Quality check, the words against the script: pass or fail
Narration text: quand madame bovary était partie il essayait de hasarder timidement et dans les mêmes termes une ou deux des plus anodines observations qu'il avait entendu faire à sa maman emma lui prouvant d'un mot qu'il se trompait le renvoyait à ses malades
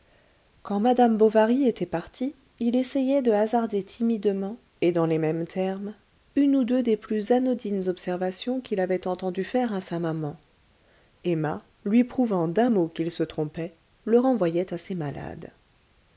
pass